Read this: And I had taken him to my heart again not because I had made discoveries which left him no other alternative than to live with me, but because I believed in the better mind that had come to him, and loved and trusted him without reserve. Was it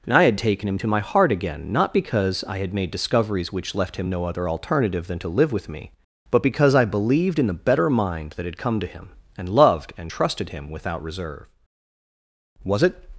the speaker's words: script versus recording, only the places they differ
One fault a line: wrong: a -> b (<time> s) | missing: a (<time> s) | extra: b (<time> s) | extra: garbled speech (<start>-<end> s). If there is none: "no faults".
no faults